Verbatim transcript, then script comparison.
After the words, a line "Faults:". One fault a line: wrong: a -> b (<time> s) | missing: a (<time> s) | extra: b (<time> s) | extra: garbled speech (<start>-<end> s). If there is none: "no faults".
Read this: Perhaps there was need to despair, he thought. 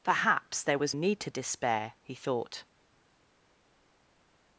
Perhaps there was need to despair, he thought.
Faults:
no faults